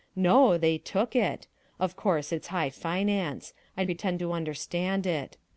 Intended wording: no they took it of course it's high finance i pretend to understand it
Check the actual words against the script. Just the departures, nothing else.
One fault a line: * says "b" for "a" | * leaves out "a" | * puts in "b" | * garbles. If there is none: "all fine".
all fine